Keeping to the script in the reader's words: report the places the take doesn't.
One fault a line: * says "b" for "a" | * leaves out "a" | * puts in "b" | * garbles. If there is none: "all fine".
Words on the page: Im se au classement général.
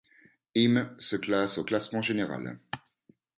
* puts in "classe"